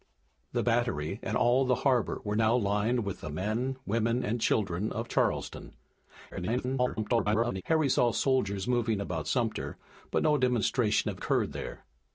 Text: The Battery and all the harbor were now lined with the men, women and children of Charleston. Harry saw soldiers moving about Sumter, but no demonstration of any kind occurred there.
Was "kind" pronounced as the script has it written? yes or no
no